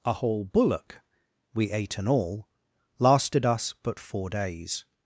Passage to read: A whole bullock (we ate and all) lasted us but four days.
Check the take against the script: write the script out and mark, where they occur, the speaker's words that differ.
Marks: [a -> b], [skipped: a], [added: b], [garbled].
A whole bullock (we ate and all) lasted us but four days.